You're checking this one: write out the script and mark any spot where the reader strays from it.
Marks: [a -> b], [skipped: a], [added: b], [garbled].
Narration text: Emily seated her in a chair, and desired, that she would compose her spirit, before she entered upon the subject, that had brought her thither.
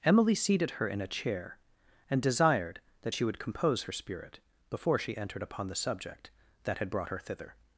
Emily seated her in a chair, and desired, that she would compose her spirit, before she entered upon the subject, that had brought her thither.